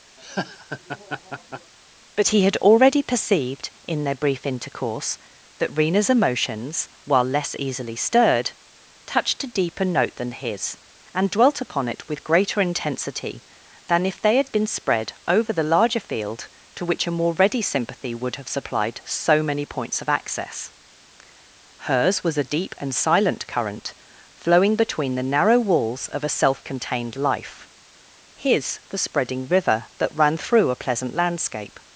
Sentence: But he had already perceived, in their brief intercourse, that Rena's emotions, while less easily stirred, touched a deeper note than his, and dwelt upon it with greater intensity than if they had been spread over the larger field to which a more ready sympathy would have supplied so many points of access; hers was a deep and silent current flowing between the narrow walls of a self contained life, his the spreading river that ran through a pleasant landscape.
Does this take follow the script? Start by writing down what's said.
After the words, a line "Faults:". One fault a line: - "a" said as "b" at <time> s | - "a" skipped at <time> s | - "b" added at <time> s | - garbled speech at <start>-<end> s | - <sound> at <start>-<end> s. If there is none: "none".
But he had already perceived, in their brief intercourse, that Rena's emotions, while less easily stirred, touched a deeper note than his, and dwelt upon it with greater intensity than if they had been spread over the larger field to which a more ready sympathy would have supplied so many points of access; hers was a deep and silent current flowing between the narrow walls of a self contained life, his the spreading river that ran through a pleasant landscape.
Faults:
- laugh at 0.2-1.7 s